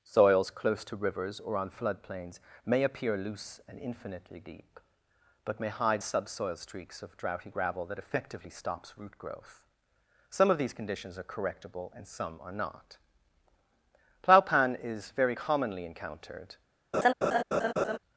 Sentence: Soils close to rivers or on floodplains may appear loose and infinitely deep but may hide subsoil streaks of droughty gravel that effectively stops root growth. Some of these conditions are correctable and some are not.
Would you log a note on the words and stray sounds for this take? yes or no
yes